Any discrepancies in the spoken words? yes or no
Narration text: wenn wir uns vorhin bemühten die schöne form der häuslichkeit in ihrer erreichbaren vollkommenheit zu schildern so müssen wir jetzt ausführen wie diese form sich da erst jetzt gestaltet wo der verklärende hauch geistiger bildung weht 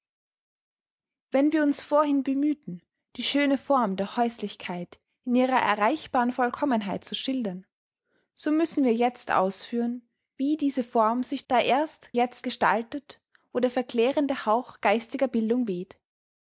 no